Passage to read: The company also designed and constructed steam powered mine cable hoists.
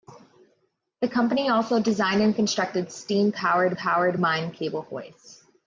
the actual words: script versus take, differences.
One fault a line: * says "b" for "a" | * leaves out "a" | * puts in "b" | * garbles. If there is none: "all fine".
* puts in "powered"